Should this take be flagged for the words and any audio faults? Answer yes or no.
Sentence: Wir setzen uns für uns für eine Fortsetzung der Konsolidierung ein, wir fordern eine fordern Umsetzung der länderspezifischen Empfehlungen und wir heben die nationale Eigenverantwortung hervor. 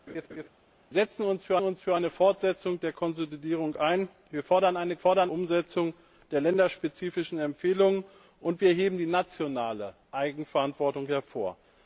yes